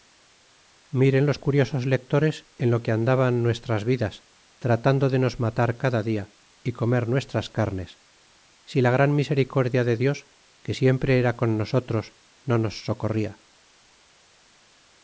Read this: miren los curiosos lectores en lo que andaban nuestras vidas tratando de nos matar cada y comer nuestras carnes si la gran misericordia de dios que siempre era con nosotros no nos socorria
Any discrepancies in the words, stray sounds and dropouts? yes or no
yes